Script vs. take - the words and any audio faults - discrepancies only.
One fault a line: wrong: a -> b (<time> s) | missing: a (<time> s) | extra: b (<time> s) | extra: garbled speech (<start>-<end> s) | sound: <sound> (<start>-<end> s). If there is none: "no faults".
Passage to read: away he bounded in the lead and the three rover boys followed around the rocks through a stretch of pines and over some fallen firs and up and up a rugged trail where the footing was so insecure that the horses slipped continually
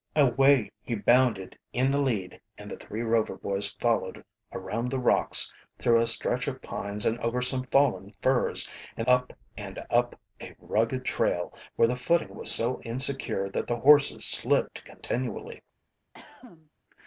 sound: cough (16.1-16.7 s)